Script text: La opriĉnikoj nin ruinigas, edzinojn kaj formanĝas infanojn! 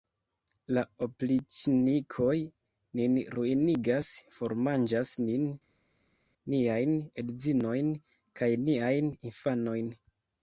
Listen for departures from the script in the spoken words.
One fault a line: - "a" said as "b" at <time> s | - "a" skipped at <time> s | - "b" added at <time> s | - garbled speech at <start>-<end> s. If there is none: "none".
- "formanĝas nin niajn" added at 4.4 s
- "formanĝas" said as "niajn" at 8.6 s